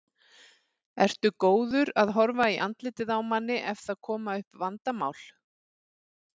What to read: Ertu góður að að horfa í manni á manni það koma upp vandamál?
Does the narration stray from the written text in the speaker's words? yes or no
yes